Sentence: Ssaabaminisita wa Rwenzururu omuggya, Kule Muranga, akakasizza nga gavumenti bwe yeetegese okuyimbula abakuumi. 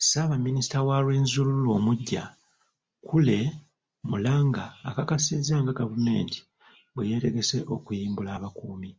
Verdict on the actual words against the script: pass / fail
pass